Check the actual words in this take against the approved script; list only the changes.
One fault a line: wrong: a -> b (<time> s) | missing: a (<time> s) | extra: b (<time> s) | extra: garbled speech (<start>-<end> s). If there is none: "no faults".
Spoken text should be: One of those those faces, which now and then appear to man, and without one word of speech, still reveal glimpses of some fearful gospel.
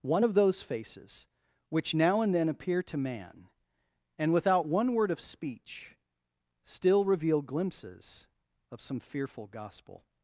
missing: those (0.6 s)